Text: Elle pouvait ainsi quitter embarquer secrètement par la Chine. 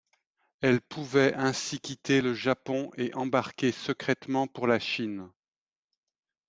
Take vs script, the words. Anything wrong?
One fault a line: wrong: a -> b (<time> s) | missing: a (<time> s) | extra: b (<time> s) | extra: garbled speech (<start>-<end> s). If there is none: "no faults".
extra: le Japon et (2.2 s)
wrong: par -> pour (4.5 s)